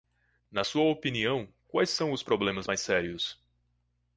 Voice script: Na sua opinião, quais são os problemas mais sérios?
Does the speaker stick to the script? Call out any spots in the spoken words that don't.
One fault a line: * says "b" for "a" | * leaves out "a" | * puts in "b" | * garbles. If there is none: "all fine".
all fine